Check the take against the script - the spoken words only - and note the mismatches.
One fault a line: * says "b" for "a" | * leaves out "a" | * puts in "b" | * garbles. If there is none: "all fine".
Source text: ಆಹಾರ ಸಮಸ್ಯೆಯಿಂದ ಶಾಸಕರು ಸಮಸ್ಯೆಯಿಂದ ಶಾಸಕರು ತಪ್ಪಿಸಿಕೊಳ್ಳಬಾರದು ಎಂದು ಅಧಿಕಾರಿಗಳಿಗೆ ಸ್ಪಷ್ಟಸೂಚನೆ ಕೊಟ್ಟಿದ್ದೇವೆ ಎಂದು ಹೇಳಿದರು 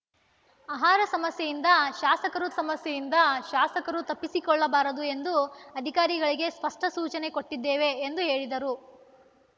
all fine